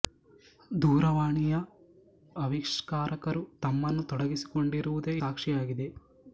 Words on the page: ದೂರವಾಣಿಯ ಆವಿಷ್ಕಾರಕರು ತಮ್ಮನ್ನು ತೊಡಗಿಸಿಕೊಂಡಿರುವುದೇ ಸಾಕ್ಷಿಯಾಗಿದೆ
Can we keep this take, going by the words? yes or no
yes